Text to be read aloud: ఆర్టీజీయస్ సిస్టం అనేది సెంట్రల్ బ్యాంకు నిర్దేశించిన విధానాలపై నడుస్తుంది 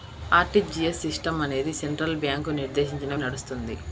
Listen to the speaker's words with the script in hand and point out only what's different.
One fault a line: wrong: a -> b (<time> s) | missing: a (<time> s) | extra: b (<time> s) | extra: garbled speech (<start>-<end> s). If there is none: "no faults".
missing: విధానాలపై (3.1 s)